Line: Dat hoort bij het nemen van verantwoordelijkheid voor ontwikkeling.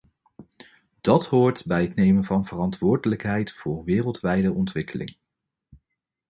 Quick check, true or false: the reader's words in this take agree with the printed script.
false